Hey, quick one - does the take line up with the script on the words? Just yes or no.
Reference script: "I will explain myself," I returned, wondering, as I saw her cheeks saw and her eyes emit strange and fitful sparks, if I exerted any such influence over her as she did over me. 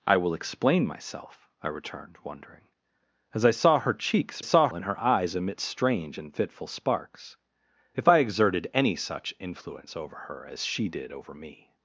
yes